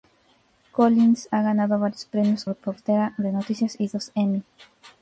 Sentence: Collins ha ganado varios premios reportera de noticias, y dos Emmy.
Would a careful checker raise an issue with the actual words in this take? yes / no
no